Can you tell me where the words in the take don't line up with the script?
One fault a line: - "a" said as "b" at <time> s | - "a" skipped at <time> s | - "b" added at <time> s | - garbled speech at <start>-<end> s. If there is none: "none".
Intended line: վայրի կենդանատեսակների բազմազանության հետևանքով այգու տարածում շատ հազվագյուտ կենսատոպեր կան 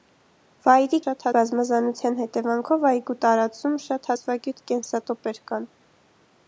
- "կենդանատեսակների" said as "շատ" at 1.0 s